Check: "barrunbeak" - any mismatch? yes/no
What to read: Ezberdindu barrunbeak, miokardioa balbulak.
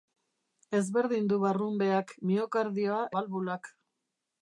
no